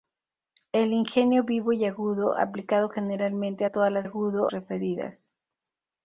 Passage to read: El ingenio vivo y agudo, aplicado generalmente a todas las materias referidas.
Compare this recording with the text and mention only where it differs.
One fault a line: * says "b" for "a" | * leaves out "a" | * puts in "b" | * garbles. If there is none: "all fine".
* says "agudo" for "materias"